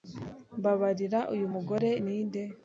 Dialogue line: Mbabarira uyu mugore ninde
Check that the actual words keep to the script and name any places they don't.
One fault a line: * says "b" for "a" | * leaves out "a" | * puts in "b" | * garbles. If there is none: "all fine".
all fine